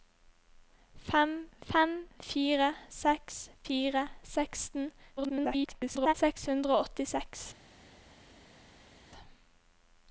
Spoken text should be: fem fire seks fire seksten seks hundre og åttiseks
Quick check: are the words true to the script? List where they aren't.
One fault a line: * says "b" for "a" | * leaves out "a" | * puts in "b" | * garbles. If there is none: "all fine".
* puts in "fem"
* garbles